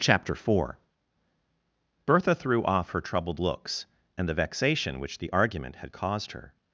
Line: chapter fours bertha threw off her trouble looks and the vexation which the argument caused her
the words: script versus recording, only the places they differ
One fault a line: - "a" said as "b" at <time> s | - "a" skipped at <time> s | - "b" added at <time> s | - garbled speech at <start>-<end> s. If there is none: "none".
- "fours" said as "four" at 0.3 s
- "trouble" said as "troubled" at 3.0 s
- "had" added at 5.8 s